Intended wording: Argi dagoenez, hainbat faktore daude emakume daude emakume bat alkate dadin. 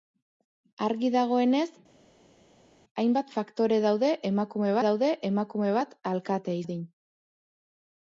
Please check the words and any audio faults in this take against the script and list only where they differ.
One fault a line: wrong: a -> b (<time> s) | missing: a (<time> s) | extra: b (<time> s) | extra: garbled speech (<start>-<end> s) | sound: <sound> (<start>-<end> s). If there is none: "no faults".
no faults